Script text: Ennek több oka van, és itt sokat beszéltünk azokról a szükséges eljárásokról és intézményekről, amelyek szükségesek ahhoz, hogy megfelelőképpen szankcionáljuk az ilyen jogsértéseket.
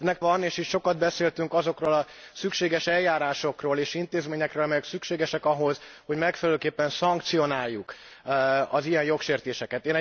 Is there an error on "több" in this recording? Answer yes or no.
yes